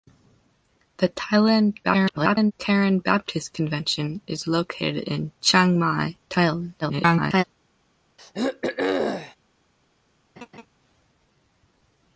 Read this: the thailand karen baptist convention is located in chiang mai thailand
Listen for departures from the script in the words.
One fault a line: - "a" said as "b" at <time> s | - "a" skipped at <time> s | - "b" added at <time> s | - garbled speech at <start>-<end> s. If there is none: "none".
- garbled speech at 1.8-2.5 s
- garbled speech at 6.8-7.4 s